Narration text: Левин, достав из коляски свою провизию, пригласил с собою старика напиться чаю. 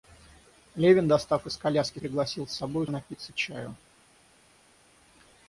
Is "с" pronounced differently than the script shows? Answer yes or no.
no